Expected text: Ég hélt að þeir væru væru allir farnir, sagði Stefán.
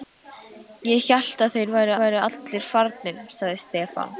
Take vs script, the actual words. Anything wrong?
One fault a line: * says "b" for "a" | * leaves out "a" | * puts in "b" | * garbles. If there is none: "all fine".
all fine